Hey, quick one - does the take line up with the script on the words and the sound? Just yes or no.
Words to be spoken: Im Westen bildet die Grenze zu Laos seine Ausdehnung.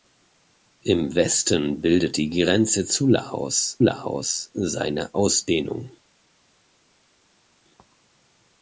no